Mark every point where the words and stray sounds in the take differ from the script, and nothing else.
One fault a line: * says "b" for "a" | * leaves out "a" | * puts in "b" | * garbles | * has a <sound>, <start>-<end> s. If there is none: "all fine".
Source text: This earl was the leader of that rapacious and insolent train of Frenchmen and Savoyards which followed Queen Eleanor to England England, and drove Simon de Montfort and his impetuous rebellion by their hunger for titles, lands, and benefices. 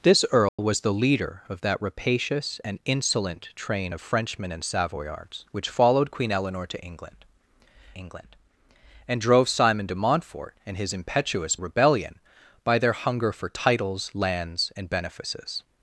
* has a dropout, 0.5-0.6 s